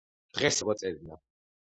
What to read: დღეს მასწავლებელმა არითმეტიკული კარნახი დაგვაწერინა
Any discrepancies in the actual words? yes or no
yes